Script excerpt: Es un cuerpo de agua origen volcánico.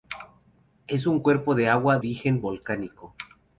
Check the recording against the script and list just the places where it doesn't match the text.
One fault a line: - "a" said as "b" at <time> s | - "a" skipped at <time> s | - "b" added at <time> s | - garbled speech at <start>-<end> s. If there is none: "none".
none